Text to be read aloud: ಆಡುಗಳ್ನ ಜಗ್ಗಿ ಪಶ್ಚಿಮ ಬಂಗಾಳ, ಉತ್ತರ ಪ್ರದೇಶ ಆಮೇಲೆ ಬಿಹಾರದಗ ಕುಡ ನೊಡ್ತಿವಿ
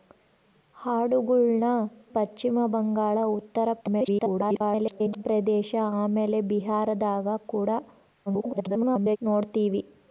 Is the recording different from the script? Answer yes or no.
yes